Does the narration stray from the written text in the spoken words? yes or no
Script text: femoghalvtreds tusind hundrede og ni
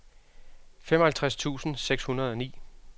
yes